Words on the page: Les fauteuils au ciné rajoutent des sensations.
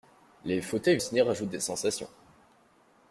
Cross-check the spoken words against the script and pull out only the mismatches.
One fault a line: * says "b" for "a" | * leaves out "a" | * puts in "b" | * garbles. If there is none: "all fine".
all fine